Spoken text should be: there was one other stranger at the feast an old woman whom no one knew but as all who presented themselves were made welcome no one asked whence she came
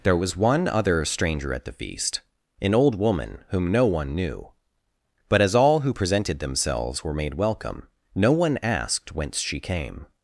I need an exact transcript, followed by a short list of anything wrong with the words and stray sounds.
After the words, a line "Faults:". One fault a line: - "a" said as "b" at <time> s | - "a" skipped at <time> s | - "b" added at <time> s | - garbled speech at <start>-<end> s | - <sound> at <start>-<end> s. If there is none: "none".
there was one other stranger at the feast an old woman whom no one knew but as all who presented themselves were made welcome no one asked whence she came
Faults:
none